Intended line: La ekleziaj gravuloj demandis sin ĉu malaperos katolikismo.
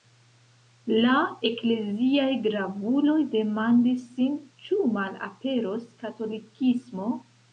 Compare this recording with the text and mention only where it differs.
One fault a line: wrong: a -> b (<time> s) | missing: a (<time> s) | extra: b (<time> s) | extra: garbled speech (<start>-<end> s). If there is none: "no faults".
no faults